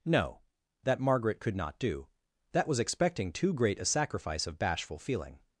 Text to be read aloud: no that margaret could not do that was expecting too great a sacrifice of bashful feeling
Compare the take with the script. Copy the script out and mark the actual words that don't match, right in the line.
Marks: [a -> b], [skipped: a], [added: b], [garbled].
no that margaret could not do that was expecting too great a sacrifice of bashful feeling